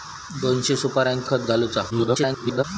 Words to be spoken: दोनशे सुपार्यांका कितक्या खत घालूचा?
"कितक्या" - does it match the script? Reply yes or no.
no